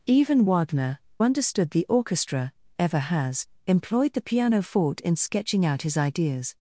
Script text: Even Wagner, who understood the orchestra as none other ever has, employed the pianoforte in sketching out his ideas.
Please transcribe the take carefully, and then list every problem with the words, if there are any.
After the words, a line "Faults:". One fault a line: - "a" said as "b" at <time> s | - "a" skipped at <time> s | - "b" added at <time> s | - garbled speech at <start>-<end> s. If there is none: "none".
Even Wagner, understood the orchestra ever has, employed the pianoforte in sketching out his ideas.
Faults:
- "who" skipped at 1.0 s
- "as none other" skipped at 2.5 s